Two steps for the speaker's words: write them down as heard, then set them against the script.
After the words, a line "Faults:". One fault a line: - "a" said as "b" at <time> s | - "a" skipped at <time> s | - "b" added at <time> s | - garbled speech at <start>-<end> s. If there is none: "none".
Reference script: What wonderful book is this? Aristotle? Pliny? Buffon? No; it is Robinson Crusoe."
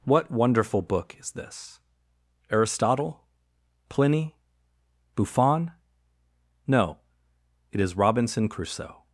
What wonderful book is this? Aristotle? Pliny? Buffon? No; it is Robinson Crusoe."
Faults:
none